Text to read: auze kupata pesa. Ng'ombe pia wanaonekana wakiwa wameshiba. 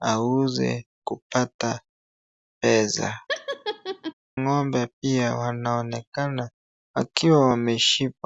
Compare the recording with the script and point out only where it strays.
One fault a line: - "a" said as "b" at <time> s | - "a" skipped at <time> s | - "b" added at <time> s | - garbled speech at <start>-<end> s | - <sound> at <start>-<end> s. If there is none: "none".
- laugh at 3.3-4.1 s